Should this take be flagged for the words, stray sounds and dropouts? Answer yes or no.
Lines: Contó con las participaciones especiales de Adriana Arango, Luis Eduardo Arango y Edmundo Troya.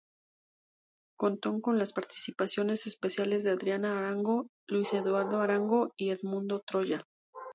no